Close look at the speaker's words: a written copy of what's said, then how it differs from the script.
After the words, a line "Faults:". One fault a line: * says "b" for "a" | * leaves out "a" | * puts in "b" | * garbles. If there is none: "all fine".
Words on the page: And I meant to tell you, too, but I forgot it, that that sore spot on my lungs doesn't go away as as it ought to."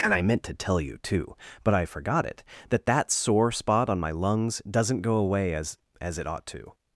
And I meant to tell you, too, but I forgot it, that that sore spot on my lungs doesn't go away as as it ought to."
Faults:
all fine